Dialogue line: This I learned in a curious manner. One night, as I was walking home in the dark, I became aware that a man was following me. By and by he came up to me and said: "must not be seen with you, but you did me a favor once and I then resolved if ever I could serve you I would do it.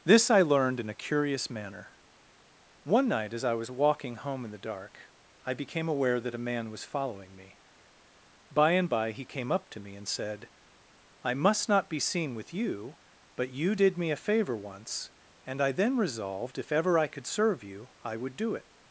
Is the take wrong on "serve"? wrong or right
right